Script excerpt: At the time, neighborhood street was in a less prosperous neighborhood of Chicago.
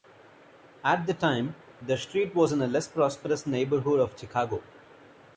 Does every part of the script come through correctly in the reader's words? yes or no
no